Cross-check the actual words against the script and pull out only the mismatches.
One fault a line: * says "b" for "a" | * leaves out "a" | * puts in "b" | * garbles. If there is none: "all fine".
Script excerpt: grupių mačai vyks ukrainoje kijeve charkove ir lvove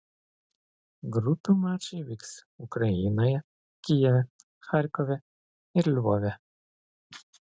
all fine